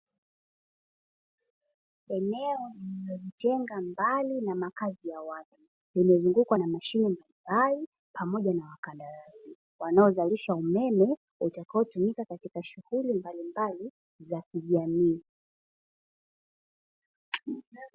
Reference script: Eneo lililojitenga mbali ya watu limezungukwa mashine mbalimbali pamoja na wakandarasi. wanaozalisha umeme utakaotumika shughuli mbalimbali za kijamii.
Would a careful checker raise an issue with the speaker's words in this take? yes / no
yes